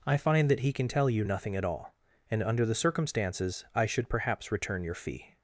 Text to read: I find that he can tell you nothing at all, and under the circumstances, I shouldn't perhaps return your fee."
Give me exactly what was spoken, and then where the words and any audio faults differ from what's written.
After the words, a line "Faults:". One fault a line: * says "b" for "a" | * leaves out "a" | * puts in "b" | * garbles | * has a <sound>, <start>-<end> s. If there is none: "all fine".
I find that he can tell you nothing at all, and under the circumstances, I should perhaps return your fee."
Faults:
* says "should" for "shouldn't"